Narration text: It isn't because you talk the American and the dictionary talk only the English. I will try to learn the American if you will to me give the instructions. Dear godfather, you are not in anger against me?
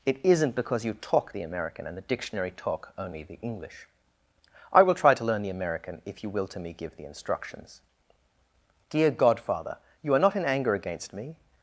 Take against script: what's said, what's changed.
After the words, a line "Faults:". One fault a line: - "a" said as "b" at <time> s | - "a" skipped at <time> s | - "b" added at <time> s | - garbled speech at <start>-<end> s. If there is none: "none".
It isn't because you talk the American and the dictionary talk only the English. I will try to learn the American if you will to me give the instructions. Dear godfather, you are not in anger against me?
Faults:
none